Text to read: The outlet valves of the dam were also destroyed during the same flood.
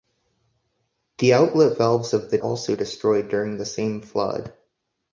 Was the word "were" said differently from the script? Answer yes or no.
yes